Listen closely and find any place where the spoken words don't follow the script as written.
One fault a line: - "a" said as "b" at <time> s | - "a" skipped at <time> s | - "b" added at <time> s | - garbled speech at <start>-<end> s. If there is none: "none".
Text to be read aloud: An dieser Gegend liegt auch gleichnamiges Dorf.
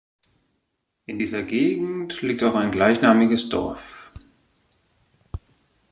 - "An" said as "In" at 1.1 s
- "ein" added at 2.5 s